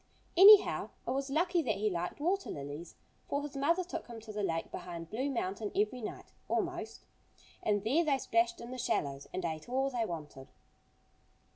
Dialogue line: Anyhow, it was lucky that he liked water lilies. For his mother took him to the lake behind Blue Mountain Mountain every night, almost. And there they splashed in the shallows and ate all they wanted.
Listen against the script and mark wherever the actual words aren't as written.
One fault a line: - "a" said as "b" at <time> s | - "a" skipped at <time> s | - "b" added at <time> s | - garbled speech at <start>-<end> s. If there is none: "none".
- "Mountain" skipped at 5.7 s